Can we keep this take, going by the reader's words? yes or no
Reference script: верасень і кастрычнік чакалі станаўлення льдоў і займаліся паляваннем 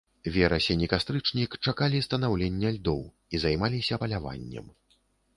yes